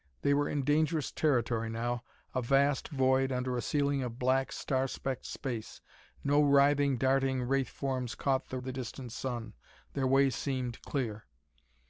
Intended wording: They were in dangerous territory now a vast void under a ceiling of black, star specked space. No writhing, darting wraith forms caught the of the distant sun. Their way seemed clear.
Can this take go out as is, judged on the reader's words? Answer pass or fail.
pass